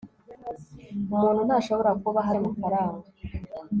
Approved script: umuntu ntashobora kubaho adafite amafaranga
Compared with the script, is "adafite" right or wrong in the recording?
wrong